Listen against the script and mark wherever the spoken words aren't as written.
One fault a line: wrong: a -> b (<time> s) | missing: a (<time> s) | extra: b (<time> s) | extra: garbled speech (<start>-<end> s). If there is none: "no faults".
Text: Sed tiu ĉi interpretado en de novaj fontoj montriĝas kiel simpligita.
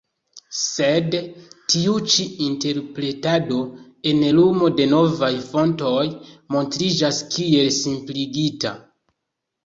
extra: lumo (4.4 s)